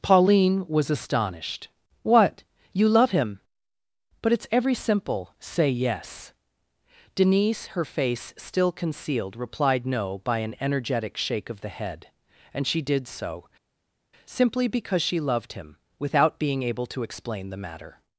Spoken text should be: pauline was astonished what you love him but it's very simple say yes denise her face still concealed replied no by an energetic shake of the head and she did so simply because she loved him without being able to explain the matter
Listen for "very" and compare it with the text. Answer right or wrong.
wrong